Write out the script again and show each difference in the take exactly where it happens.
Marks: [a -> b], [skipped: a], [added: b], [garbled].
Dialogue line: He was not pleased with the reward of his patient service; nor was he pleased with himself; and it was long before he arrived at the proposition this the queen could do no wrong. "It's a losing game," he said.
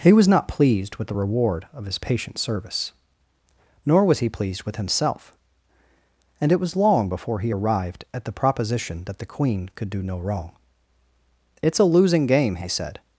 He was not pleased with the reward of his patient service; nor was he pleased with himself; and it was long before he arrived at the proposition [this -> that] the queen could do no wrong. "It's a losing game," he said.